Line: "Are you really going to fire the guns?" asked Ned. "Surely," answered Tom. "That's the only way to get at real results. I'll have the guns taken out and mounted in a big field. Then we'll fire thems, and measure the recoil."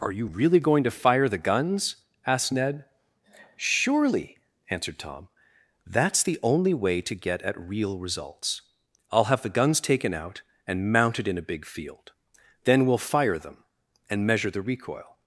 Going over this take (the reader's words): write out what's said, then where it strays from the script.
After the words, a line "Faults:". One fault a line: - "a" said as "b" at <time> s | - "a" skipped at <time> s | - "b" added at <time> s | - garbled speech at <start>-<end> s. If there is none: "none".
"Are you really going to fire the guns?" asked Ned. "Surely," answered Tom. "That's the only way to get at real results. I'll have the guns taken out and mounted in a big field. Then we'll fire them, and measure the recoil."
Faults:
- "thems" said as "them" at 13.4 s